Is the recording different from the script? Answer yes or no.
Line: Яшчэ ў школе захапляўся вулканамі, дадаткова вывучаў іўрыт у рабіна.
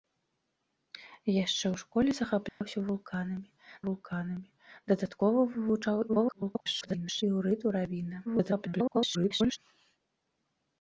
yes